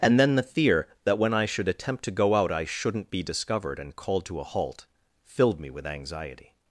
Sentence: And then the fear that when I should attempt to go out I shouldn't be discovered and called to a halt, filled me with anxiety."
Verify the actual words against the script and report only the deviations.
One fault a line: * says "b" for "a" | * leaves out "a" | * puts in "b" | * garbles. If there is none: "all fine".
all fine